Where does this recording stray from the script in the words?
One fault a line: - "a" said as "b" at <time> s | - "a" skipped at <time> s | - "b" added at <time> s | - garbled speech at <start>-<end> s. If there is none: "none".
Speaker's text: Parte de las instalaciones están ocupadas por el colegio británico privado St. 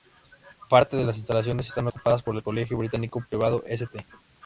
none